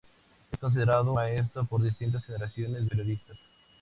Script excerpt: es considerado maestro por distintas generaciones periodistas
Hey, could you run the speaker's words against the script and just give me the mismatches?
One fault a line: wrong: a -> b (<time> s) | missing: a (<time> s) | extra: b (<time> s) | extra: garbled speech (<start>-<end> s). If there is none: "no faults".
no faults